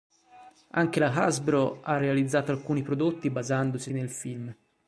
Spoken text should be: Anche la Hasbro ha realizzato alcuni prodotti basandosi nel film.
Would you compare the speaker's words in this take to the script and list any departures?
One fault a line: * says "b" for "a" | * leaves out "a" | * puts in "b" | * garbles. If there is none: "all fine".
all fine